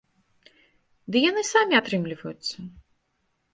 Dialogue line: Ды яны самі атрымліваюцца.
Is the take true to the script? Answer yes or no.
yes